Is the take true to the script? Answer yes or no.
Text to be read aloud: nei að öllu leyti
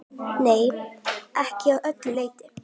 no